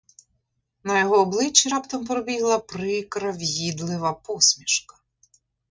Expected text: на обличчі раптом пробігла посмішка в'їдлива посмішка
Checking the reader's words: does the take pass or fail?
fail